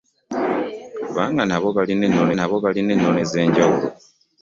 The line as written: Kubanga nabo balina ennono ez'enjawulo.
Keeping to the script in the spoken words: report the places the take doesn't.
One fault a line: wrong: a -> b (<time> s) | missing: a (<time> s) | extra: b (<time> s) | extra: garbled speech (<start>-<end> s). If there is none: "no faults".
extra: nabo balina ennono (2.3 s)